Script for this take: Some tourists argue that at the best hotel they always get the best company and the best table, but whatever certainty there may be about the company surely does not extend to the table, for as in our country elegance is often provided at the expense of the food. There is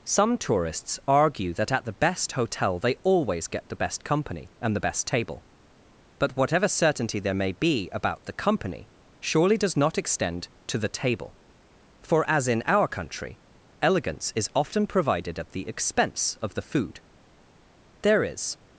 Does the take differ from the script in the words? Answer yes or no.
no